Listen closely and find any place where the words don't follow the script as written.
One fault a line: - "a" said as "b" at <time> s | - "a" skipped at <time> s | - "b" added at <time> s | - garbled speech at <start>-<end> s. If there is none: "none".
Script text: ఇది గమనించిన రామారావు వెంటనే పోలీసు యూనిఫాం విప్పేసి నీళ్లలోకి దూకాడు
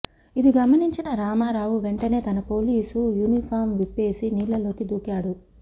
- "తన" added at 2.2 s